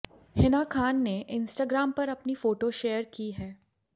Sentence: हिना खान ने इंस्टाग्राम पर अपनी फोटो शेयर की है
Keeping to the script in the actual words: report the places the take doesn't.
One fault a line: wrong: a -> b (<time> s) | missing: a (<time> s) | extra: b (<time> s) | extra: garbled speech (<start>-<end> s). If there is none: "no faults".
no faults